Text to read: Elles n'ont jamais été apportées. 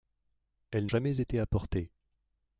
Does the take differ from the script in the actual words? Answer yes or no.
yes